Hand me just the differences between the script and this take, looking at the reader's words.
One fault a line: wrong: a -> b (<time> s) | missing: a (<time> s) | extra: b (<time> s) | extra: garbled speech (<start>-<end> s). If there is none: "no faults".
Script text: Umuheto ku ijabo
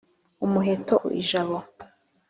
no faults